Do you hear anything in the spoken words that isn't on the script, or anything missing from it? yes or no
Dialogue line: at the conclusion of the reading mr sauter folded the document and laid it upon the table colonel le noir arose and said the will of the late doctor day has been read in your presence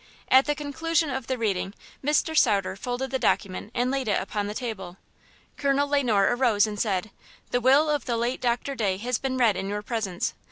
no